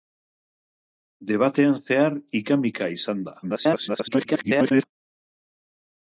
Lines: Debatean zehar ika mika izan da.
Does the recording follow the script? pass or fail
fail